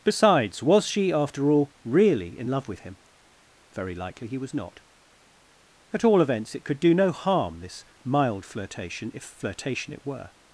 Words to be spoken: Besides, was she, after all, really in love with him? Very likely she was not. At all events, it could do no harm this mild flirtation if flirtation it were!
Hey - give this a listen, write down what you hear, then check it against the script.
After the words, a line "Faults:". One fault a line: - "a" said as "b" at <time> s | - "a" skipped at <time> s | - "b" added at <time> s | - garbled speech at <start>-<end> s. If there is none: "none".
Besides, was she, after all, really in love with him? Very likely he was not. At all events, it could do no harm this mild flirtation if flirtation it were!
Faults:
- "she" said as "he" at 4.3 s